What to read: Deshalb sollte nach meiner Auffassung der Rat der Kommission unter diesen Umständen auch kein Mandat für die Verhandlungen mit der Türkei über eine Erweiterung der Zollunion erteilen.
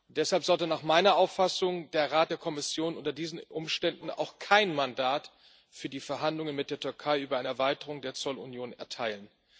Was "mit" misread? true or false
false